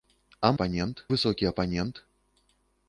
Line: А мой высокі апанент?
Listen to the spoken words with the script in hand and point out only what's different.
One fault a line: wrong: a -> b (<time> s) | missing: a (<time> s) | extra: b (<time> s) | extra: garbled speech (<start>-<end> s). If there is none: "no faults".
wrong: мой -> апанент (0.5 s)